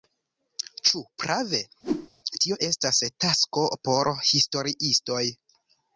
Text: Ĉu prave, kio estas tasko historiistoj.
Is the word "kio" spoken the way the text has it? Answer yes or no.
no